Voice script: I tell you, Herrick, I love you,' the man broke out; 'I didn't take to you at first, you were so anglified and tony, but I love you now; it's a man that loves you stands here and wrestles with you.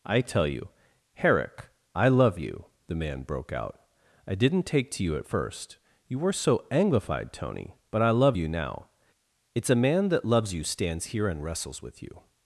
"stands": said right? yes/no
yes